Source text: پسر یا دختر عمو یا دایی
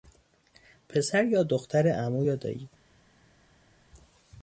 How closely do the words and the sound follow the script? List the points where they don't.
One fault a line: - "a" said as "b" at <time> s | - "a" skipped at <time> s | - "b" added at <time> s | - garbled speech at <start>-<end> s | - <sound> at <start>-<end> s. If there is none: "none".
none